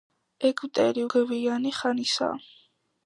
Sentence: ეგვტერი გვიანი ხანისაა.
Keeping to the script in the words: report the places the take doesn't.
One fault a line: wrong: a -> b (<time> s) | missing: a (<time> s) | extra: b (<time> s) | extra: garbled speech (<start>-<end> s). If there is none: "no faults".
no faults